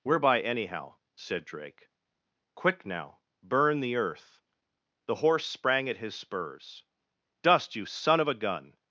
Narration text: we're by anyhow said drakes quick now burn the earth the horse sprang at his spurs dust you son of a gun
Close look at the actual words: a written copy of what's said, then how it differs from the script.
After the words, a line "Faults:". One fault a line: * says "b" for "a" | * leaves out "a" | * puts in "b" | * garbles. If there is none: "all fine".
we're by anyhow said drake quick now burn the earth the horse sprang at his spurs dust you son of a gun
Faults:
* says "drake" for "drakes"